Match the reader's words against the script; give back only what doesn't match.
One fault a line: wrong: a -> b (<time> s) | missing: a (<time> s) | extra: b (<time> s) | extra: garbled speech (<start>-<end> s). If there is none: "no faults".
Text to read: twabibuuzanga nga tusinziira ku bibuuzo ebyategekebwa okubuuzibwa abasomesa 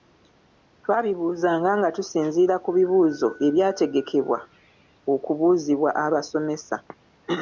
no faults